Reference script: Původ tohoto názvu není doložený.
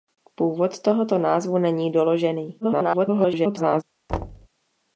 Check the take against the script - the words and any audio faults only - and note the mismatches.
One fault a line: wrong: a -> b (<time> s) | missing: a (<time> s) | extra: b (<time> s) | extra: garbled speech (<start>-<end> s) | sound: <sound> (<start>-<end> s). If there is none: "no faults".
extra: garbled speech (2.6-3.8 s)
sound: thud (4.1-4.5 s)